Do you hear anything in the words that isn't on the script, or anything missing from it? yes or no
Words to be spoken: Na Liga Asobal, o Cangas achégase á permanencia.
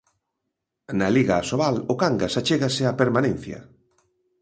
no